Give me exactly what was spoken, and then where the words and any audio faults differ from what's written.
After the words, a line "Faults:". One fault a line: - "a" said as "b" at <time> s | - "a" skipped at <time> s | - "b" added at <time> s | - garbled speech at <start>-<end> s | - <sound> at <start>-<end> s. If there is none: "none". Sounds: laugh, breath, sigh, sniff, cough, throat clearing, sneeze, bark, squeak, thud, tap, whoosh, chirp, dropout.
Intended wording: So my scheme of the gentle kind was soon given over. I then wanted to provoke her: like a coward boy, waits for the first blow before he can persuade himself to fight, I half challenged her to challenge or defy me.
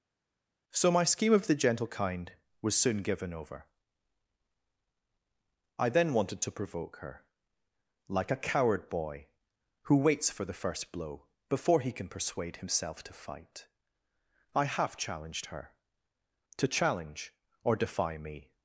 So my scheme of the gentle kind was soon given over. I then wanted to provoke her: like a coward boy, who waits for the first blow before he can persuade himself to fight, I half challenged her to challenge or defy me.
Faults:
- "who" added at 9.8 s